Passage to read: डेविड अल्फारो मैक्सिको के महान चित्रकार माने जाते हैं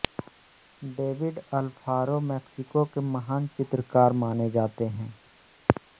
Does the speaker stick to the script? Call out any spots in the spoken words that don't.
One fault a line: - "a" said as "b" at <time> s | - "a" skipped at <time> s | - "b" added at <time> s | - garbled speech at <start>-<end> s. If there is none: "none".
none